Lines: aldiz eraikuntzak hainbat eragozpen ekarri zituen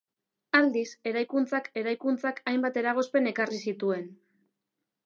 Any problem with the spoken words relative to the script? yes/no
yes